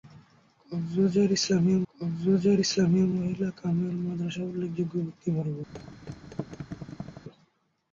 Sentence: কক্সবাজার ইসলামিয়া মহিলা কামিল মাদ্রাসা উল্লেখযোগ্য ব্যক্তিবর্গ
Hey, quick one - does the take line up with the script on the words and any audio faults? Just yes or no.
no